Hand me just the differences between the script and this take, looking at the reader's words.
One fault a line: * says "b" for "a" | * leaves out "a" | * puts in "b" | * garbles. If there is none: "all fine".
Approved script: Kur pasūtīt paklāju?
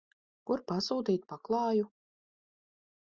all fine